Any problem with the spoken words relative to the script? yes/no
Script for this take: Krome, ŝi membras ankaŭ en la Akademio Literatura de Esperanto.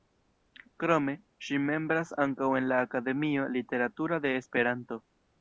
no